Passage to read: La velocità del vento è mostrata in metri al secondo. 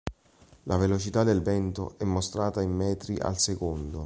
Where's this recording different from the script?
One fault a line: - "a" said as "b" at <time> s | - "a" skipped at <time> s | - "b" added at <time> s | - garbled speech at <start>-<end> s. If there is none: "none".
none